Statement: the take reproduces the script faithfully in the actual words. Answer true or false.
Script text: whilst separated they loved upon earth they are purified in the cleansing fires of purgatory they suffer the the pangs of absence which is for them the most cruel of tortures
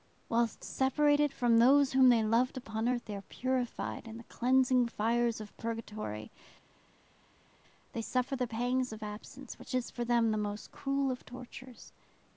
false